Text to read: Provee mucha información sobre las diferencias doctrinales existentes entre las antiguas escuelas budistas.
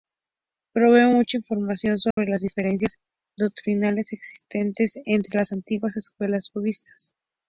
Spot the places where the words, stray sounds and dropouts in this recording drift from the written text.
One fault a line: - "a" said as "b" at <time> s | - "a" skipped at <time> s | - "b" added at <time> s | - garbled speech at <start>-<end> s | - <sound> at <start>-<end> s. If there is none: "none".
- dropout at 2.1-2.2 s